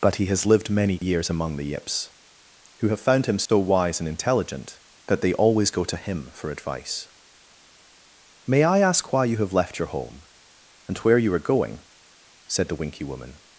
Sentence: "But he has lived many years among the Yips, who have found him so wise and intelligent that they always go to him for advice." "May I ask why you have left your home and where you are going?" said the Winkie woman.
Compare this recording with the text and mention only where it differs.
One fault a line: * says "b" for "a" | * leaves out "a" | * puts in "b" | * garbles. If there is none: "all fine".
all fine